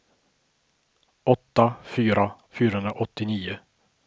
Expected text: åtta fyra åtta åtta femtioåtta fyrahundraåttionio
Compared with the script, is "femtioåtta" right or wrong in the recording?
wrong